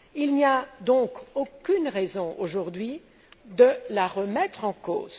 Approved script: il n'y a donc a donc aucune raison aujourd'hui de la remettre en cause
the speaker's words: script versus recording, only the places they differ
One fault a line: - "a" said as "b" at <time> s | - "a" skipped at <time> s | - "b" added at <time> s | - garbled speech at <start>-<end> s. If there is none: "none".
- "a donc" skipped at 1.1 s